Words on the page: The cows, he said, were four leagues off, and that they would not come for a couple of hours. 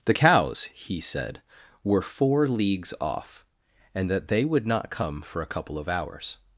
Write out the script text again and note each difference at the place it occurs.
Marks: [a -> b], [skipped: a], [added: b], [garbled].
The cows, he said, were four leagues off, and that they would not come for a couple of hours.